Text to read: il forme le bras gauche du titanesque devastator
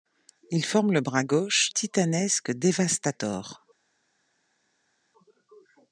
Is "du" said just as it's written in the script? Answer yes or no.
no